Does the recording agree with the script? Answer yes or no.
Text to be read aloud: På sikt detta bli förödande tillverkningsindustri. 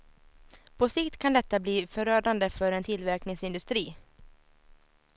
no